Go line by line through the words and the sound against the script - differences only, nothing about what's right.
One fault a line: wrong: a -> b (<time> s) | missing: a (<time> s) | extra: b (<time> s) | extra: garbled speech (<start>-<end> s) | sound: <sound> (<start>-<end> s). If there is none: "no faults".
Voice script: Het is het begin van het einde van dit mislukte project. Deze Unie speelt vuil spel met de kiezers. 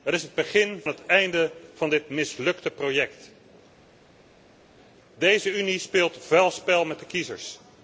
missing: van (0.8 s)